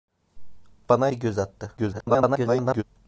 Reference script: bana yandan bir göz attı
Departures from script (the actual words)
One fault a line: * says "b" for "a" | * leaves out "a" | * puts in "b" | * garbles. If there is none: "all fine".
* leaves out "yandan"
* garbles